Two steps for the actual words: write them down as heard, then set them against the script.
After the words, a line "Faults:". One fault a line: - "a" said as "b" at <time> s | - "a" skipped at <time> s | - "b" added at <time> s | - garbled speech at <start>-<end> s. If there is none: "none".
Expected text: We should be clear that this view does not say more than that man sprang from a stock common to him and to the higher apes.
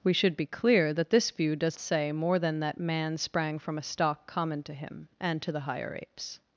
We should be clear that this view does say more than that man sprang from a stock common to him and to the higher apes.
Faults:
- "not" skipped at 1.8 s